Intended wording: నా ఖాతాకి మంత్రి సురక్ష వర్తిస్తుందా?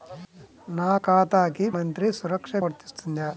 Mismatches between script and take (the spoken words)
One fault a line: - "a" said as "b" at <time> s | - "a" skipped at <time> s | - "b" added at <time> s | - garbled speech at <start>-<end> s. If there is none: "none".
none